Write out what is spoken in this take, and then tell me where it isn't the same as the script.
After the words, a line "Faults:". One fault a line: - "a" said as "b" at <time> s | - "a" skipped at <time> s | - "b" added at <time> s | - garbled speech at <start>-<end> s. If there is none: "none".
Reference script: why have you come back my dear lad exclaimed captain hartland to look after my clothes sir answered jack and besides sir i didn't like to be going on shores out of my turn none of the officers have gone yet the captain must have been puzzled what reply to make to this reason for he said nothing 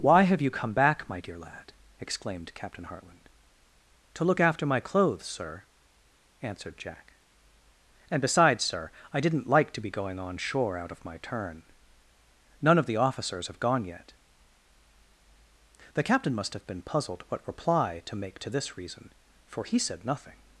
why have you come back my dear lad exclaimed captain hartland to look after my clothes sir answered jack and besides sir i didn't like to be going on shore out of my turn none of the officers have gone yet the captain must have been puzzled what reply to make to this reason for he said nothing
Faults:
- "shores" said as "shore" at 10.4 s